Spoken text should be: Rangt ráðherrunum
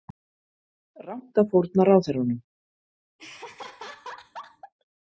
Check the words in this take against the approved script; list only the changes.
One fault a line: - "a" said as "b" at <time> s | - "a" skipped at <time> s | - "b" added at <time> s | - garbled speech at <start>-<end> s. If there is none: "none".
- "að fórna" added at 1.4 s